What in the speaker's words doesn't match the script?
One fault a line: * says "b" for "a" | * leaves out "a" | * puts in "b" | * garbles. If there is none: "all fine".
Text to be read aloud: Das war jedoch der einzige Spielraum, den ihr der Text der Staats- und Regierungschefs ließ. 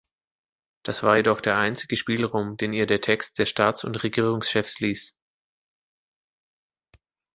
all fine